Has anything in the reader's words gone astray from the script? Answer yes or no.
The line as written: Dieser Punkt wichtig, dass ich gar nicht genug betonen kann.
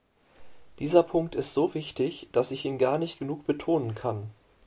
yes